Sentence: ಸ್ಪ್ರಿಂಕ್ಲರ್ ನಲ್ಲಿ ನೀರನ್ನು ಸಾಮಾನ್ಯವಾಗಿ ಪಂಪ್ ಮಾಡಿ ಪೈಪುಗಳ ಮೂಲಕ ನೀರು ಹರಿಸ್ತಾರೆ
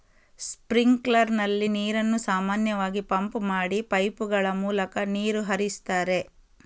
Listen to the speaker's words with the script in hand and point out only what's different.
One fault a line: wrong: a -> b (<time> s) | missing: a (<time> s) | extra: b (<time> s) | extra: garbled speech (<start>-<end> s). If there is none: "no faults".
no faults